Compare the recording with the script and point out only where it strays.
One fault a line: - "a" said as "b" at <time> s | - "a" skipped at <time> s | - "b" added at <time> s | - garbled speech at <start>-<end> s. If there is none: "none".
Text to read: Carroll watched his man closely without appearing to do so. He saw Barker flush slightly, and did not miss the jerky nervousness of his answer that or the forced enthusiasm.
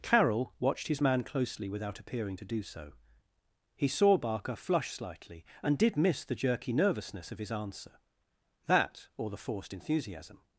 - "not" skipped at 6.0 s